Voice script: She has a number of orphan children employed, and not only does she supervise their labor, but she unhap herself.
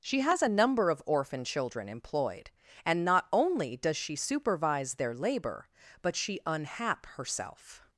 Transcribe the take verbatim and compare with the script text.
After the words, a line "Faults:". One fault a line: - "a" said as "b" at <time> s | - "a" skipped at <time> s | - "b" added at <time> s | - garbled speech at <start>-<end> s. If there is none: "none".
She has a number of orphan children employed, and not only does she supervise their labor, but she unhap herself.
Faults:
none